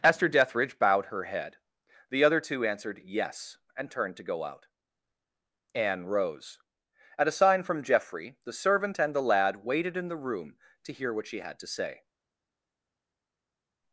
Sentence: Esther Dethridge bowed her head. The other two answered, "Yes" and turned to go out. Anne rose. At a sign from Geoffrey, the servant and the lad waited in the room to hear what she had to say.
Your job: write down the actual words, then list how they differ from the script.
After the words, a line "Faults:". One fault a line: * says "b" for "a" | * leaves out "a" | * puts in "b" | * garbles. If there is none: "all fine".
Esther Dethridge bowed her head. The other two answered, "Yes" and turned to go out. Anne rose. At a sign from Geoffrey, the servant and the lad waited in the room to hear what she had to say.
Faults:
all fine